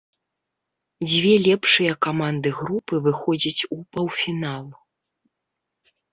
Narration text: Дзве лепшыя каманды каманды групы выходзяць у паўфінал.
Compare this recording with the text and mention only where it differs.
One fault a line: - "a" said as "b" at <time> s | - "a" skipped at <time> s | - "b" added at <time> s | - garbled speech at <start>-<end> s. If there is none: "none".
- "каманды" skipped at 2.5 s